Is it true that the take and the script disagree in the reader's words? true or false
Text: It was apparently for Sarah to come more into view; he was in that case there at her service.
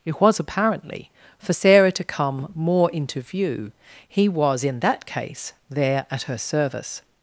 false